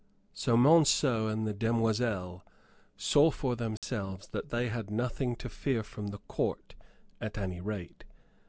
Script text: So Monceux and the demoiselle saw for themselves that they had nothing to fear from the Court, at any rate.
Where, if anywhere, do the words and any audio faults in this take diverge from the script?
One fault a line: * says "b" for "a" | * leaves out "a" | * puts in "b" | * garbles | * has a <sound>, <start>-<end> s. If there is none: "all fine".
* has a dropout, 3.8-3.8 s